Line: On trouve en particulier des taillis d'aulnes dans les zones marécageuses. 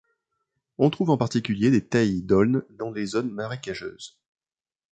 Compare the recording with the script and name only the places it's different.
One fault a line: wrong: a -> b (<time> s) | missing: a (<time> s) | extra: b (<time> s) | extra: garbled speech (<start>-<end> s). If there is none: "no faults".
no faults